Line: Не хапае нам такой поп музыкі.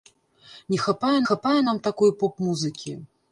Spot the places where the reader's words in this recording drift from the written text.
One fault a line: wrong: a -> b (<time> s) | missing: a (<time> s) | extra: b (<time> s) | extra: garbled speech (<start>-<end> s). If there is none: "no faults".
extra: хапае (1.3 s)